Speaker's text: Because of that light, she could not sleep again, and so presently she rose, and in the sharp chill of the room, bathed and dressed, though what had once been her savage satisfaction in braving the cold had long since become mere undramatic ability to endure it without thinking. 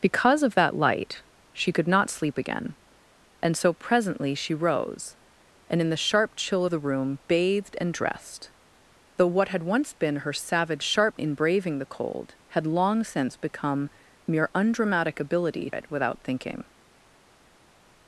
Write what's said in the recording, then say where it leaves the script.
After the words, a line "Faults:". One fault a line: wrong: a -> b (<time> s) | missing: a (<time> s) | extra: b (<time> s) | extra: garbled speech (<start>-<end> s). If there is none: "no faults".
Because of that light, she could not sleep again, and so presently she rose, and in the sharp chill the room, bathed and dressed, though what had once been her savage sharp in braving the cold had long since become mere undramatic ability it without thinking.
Faults:
missing: of (6.7 s)
wrong: satisfaction -> sharp (10.8 s)
missing: to endure (15.7 s)